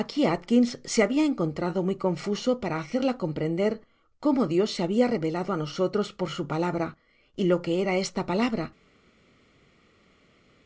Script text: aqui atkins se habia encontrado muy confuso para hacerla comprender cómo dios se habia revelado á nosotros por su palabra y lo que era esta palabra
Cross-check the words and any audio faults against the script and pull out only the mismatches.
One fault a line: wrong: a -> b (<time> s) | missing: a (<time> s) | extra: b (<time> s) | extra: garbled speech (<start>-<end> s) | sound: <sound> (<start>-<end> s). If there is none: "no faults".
no faults